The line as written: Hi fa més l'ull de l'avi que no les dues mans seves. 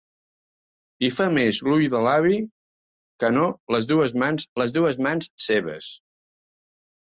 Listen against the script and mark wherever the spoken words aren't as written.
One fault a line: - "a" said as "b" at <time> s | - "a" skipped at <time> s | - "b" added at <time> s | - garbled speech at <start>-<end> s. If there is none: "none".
- "les dues mans" added at 4.6 s